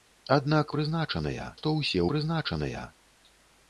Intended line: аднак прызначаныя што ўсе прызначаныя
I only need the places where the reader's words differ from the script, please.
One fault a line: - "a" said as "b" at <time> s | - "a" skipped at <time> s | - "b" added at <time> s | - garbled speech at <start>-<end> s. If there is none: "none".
none